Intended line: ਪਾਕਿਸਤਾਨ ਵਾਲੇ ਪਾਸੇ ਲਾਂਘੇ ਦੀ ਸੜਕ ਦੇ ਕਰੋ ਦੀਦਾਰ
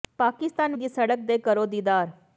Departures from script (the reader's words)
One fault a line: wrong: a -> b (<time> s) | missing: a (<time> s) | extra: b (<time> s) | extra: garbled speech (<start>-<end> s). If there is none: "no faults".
missing: ਵਾਲੇ ਪਾਸੇ ਲਾਂਘੇ (0.8 s)